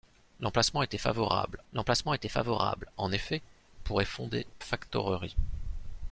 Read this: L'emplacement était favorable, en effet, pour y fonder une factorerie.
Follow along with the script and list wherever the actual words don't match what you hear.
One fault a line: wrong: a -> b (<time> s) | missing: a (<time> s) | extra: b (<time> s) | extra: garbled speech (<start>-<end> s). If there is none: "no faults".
extra: l'emplacement était favorable (1.7 s)
missing: une (4.5 s)